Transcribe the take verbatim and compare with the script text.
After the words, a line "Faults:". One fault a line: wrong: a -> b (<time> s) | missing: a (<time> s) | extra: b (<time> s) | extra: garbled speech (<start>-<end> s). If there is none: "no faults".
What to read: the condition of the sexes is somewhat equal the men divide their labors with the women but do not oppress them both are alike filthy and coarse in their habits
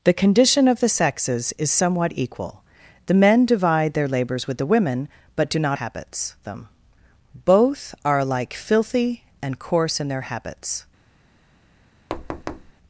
the condition of the sexes is somewhat equal the men divide their labors with the women but do not habits them both are alike filthy and coarse in their habits
Faults:
wrong: oppress -> habits (5.7 s)